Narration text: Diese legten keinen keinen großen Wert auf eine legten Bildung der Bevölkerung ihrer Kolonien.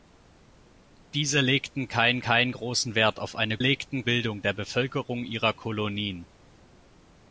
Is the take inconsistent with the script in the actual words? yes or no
no